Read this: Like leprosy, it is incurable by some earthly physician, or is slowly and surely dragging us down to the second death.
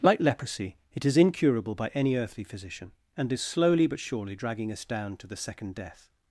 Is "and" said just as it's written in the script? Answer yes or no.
no